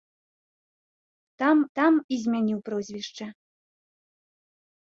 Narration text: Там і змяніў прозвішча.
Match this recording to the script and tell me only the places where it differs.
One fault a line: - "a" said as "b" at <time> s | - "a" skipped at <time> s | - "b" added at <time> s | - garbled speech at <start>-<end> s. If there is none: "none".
- "там" added at 1.8 s